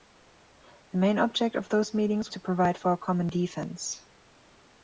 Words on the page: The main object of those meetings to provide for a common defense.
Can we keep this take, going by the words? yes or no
yes